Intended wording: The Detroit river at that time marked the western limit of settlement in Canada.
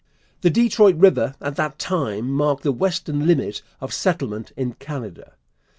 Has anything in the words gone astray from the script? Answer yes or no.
no